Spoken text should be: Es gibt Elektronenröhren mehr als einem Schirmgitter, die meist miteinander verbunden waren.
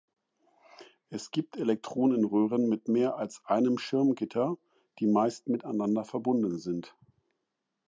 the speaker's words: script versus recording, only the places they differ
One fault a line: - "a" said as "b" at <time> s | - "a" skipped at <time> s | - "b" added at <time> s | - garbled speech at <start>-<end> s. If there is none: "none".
- "mit" added at 2.7 s
- "waren" said as "sind" at 6.6 s